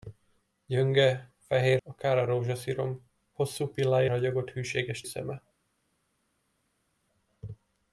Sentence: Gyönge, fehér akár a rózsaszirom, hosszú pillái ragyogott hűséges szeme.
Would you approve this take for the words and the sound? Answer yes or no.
yes